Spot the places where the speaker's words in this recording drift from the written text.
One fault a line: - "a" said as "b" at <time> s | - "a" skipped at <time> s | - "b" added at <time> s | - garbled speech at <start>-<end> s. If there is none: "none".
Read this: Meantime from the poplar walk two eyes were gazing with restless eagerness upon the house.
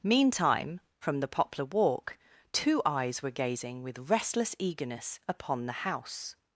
none